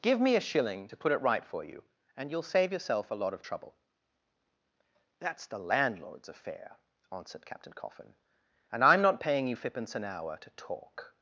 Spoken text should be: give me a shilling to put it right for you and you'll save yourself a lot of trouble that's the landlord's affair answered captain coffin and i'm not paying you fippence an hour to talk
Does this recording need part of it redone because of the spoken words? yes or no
no